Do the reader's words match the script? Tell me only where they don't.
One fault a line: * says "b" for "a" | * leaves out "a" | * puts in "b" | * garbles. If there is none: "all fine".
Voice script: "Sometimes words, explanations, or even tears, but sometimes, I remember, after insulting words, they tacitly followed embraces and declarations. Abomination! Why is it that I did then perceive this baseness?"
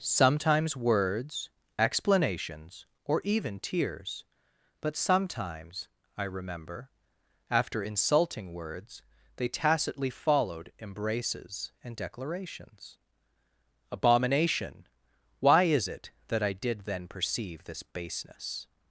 all fine